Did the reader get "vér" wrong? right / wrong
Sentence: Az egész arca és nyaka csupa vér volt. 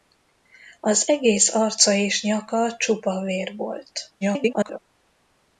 right